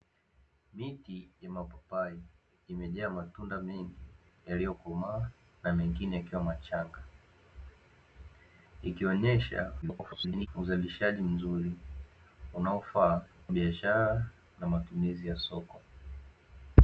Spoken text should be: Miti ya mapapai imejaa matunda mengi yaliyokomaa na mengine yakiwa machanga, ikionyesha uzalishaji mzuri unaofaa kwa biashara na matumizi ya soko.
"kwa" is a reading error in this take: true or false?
true